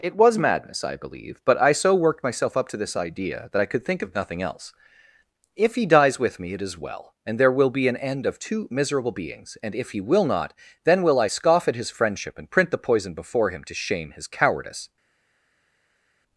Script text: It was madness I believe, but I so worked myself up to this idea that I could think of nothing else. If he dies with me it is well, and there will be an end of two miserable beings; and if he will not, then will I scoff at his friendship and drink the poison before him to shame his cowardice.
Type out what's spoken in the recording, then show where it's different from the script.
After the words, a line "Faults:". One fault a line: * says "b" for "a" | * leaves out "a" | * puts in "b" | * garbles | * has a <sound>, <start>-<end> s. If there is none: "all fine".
It was madness I believe, but I so worked myself up to this idea that I could think of nothing else. If he dies with me it is well, and there will be an end of two miserable beings; and if he will not, then will I scoff at his friendship and print the poison before him to shame his cowardice.
Faults:
* says "print" for "drink"